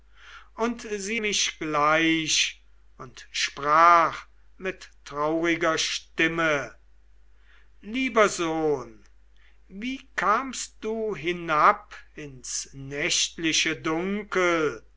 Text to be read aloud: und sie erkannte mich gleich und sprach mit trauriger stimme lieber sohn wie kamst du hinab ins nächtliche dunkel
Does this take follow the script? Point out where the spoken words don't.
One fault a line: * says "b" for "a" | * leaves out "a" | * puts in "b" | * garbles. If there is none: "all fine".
* leaves out "erkannte"